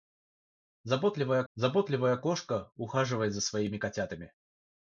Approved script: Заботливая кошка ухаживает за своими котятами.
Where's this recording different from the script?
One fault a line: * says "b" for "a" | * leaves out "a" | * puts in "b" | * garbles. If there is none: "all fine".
* puts in "заботливая"